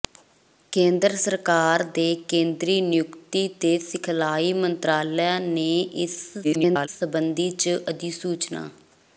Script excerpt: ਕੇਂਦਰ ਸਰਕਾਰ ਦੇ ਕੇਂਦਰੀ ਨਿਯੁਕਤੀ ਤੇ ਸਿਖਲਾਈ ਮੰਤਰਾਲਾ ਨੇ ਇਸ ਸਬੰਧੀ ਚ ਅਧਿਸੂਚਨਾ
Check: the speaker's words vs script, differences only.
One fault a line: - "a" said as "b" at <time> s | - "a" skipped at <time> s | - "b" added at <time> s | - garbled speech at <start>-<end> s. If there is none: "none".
- garbled speech at 6.4-6.9 s